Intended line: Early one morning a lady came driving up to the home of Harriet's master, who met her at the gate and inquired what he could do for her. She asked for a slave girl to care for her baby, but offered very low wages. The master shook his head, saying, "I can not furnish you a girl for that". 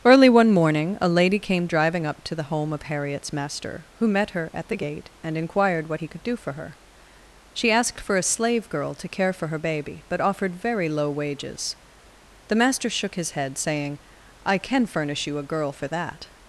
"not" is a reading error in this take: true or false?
true